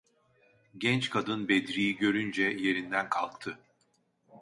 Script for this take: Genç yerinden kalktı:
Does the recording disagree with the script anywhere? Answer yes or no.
yes